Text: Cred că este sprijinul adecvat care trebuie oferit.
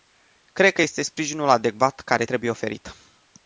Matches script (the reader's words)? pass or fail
pass